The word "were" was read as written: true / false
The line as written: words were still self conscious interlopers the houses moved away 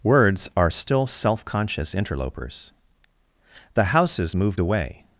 false